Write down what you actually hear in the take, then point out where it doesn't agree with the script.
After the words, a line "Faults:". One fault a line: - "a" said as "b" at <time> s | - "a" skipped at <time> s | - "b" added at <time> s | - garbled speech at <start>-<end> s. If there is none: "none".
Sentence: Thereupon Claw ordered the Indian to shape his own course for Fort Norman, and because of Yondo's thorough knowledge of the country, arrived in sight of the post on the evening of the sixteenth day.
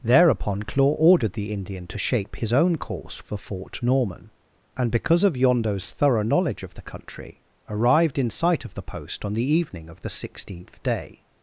Thereupon Claw ordered the Indian to shape his own course for Fort Norman, and because of Yondo's thorough knowledge of the country, arrived in sight of the post on the evening of the sixteenth day.
Faults:
none